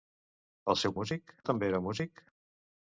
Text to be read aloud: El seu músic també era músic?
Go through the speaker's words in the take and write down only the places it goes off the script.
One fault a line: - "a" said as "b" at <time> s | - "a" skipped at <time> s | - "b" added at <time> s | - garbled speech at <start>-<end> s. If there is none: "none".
none